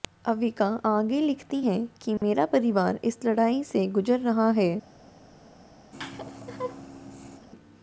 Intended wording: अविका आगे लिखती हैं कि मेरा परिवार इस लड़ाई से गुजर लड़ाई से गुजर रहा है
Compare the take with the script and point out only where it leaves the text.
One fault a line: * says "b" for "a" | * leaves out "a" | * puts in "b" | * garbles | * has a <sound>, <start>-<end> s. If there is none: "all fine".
* has a dropout, 2.2-2.2 s
* leaves out "लड़ाई से गुजर"
* has a laugh, 5.9-7.5 s